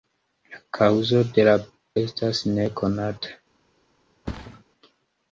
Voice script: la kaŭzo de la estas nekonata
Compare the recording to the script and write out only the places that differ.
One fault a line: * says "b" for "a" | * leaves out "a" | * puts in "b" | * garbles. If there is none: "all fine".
all fine